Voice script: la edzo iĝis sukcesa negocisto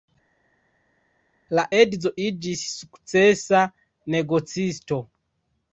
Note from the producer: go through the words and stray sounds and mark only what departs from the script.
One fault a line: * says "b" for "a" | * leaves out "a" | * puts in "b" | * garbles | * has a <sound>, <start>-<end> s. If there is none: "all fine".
all fine